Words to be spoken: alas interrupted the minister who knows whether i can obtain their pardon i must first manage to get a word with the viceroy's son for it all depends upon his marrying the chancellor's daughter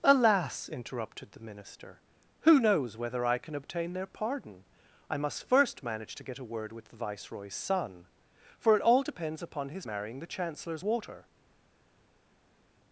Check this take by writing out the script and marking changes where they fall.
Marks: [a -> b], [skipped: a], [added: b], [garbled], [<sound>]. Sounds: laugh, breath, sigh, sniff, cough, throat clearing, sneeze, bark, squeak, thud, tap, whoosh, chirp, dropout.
alas interrupted the minister who knows whether i can obtain their pardon i must first manage to get a word with the viceroy's son for it all depends upon his marrying the chancellor's [daughter -> water]